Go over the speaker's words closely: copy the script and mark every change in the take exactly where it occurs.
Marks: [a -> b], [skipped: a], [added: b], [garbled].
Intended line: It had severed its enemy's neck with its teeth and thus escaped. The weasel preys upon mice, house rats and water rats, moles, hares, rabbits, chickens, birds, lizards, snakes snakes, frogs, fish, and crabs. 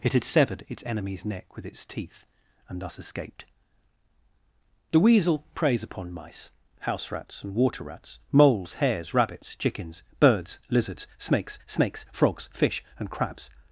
It had severed its enemy's neck with its teeth and thus escaped. The weasel preys upon mice, house rats and water rats, moles, hares, rabbits, chickens, birds, lizards, snakes snakes, frogs, fish, and crabs.